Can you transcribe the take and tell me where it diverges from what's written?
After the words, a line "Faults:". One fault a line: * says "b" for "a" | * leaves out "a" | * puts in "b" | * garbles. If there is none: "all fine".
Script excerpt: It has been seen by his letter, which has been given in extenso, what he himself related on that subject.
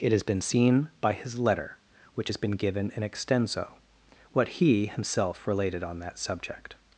It has been seen by his letter, which has been given in extenso, what he himself related on that subject.
Faults:
all fine